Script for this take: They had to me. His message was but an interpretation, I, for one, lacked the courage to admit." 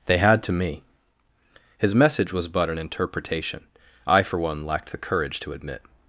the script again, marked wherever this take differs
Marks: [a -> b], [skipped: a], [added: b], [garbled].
They had to me. His message was but an interpretation, I, for one, lacked the courage to admit."